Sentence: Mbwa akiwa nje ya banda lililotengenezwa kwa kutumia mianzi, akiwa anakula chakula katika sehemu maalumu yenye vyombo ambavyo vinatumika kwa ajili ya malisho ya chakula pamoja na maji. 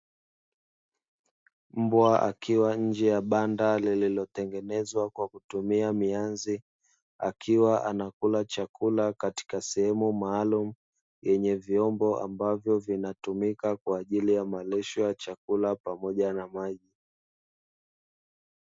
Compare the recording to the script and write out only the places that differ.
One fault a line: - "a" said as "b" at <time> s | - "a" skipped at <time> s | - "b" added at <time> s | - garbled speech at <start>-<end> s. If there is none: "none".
none